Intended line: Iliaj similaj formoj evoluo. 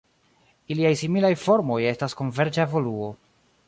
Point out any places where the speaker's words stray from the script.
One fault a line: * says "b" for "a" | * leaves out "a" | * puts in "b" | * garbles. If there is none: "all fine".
* puts in "estas konverĝa"